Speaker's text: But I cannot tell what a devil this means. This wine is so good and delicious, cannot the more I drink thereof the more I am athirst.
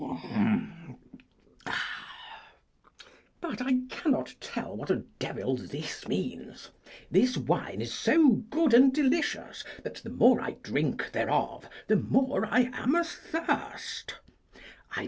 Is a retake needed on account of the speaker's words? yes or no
yes